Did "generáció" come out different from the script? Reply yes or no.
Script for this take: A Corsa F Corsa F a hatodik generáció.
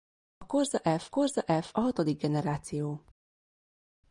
no